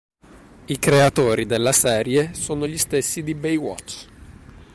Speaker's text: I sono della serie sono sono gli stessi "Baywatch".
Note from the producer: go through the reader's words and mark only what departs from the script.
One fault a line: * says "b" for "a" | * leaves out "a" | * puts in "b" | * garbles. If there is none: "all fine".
* says "creatori" for "sono"
* leaves out "sono"
* puts in "di"